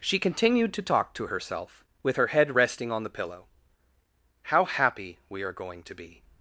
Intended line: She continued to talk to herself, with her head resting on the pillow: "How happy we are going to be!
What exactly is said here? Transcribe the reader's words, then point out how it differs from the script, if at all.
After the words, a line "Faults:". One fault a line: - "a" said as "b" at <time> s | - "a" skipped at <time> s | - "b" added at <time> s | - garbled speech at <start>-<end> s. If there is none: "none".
She continued to talk to herself, with her head resting on the pillow: "How happy we are going to be!
Faults:
none